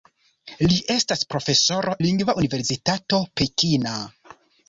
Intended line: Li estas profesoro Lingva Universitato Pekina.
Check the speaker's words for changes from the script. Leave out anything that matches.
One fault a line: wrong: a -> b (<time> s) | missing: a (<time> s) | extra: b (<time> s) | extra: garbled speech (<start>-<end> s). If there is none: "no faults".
no faults